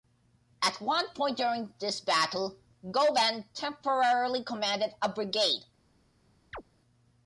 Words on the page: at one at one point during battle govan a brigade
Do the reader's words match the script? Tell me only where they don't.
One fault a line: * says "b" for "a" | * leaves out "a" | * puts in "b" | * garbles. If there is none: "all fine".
* leaves out "at one"
* puts in "this"
* puts in "temporarily commanded"